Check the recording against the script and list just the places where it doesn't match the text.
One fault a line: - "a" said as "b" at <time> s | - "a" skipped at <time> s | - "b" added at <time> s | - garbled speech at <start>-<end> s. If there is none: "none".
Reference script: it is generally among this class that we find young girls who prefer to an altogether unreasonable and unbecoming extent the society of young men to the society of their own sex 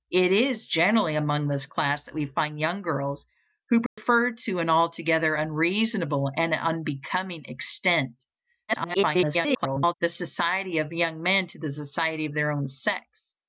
- garbled speech at 8.7-9.9 s